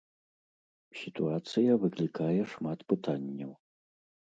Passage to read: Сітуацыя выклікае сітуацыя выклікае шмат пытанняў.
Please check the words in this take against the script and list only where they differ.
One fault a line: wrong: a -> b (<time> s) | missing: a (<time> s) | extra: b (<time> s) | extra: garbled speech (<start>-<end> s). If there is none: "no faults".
missing: сітуацыя выклікае (2.4 s)